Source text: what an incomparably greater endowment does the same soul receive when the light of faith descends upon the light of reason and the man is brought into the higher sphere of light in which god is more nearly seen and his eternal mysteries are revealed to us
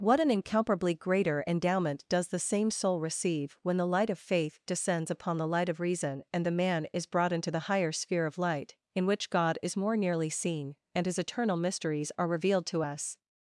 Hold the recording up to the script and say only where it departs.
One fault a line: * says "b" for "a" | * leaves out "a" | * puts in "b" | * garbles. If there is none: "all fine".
all fine